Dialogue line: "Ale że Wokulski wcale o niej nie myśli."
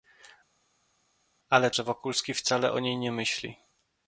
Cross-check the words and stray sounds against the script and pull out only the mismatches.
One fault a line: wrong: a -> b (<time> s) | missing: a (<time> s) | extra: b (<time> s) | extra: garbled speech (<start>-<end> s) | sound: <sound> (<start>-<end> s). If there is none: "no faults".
no faults